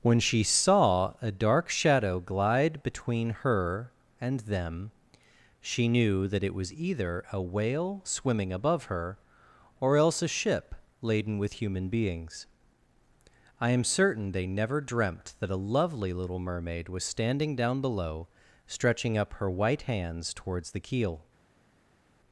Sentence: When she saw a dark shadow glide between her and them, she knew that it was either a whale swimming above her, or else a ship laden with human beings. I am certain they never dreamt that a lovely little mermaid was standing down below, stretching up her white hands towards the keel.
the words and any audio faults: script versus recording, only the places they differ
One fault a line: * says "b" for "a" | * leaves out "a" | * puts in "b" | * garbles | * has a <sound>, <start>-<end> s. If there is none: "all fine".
all fine